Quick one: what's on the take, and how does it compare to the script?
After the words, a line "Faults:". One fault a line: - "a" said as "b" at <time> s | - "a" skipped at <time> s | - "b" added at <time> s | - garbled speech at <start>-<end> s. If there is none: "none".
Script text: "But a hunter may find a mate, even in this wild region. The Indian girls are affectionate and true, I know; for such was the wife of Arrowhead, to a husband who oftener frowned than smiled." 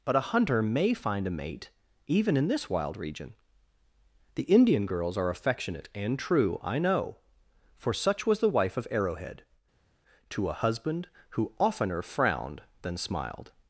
"But a hunter may find a mate, even in this wild region. The Indian girls are affectionate and true, I know; for such was the wife of Arrowhead, to a husband who oftener frowned than smiled."
Faults:
none